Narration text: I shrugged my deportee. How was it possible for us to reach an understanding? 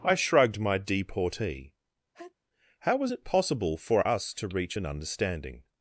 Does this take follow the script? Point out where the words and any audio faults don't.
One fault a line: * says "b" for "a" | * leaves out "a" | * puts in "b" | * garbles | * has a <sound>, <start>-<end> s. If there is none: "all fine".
* has a sneeze, 2.1-2.3 s